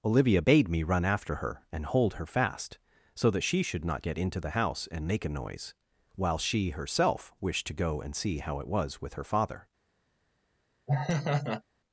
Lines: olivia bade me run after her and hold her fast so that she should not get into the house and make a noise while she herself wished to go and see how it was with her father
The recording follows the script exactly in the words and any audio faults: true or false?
false